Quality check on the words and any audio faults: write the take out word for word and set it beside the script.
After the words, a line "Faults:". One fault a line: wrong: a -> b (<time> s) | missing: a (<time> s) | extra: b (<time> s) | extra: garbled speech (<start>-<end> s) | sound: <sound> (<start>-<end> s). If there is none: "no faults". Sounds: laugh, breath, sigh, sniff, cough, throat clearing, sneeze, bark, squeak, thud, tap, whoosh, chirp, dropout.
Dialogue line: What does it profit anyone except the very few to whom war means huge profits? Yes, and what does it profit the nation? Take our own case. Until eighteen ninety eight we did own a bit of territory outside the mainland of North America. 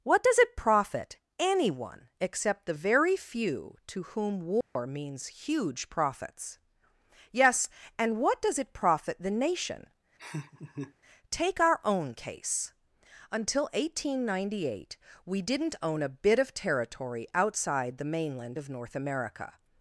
What does it profit anyone except the very few to whom war means huge profits? Yes, and what does it profit the nation? Take our own case. Until eighteen ninety eight we didn't own a bit of territory outside the mainland of North America.
Faults:
sound: dropout (4.6-4.8 s)
sound: laugh (10.2-10.9 s)
wrong: did -> didn't (15.4 s)